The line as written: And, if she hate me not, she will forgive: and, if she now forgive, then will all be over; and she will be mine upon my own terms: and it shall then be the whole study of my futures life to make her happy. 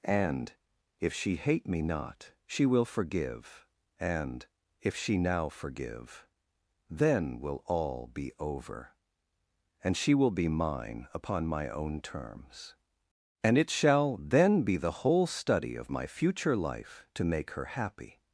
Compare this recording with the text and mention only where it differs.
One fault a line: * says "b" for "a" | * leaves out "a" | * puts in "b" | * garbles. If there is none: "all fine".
* says "future" for "futures"